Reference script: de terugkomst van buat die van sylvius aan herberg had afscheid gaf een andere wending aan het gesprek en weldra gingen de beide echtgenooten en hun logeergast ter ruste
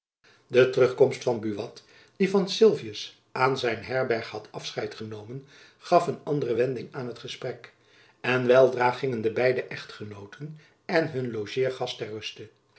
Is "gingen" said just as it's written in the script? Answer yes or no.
yes